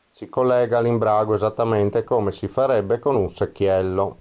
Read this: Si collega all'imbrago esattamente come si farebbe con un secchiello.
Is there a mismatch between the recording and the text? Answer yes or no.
no